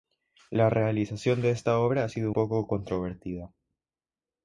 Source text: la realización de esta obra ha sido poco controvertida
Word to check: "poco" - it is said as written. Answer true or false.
true